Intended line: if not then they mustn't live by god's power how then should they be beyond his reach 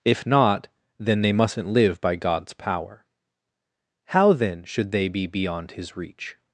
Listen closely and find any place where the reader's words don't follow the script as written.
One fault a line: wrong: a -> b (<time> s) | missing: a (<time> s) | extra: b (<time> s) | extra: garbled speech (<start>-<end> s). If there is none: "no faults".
no faults